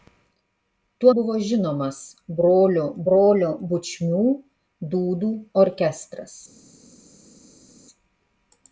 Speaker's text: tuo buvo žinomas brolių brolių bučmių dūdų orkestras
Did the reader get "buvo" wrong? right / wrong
right